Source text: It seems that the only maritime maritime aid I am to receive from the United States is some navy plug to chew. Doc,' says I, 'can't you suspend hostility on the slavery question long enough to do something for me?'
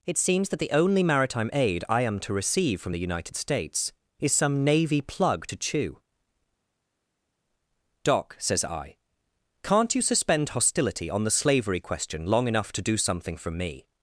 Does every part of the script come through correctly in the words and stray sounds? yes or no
no